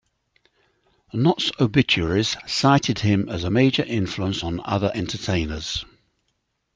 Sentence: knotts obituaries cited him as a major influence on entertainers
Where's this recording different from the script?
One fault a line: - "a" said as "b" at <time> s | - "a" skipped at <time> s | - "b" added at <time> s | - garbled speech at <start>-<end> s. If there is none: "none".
- "other" added at 4.6 s